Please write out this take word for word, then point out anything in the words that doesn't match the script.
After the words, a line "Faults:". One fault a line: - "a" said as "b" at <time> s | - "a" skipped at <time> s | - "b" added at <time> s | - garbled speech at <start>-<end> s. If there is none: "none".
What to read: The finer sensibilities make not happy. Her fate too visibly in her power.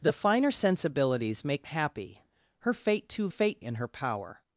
The finer sensibilities make happy. Her fate too fate in her power.
Faults:
- "not" skipped at 1.7 s
- "visibly" said as "fate" at 3.3 s